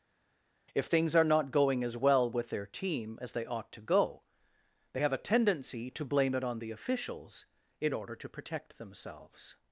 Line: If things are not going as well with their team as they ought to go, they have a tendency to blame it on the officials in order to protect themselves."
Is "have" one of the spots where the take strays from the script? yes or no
no